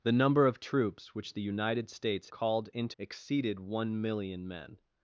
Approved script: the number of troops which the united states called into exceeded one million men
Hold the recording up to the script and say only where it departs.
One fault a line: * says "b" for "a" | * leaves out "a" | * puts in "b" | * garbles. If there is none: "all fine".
all fine